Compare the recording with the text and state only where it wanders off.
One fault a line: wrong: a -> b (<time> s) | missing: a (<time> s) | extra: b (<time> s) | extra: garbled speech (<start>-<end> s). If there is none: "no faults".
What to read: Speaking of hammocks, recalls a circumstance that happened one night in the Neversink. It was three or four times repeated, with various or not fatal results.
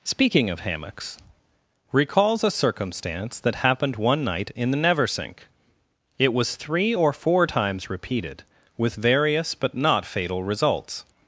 wrong: or -> but (9.6 s)